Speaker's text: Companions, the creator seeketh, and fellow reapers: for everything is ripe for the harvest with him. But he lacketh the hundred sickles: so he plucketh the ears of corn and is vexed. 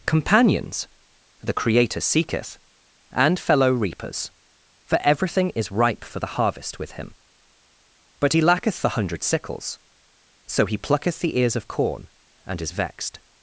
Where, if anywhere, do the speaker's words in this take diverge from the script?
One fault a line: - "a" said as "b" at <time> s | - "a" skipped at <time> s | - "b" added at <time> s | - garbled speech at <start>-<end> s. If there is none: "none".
none